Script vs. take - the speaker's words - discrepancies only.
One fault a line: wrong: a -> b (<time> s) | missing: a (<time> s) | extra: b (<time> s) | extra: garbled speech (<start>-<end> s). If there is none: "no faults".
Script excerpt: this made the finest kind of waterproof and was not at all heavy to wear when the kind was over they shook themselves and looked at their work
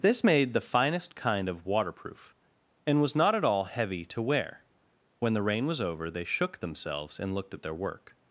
wrong: kind -> rain (5.4 s)